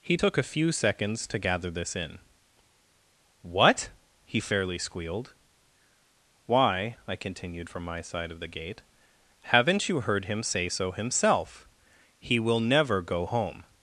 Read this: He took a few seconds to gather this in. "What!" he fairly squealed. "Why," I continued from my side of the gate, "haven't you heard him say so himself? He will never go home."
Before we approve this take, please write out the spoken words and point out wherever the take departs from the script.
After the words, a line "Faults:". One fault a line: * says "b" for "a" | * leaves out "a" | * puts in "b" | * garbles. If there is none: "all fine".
He took a few seconds to gather this in. "What!" he fairly squealed. "Why," I continued from my side of the gate, "haven't you heard him say so himself? He will never go home."
Faults:
all fine